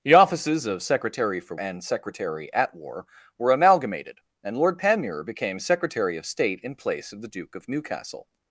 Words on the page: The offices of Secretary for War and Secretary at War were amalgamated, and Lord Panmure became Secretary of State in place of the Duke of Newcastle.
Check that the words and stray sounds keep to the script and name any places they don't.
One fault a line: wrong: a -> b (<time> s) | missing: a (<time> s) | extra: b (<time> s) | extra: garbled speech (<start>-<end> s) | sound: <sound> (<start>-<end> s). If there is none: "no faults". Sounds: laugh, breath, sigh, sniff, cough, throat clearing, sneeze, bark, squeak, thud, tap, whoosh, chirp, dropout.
missing: War (1.6 s)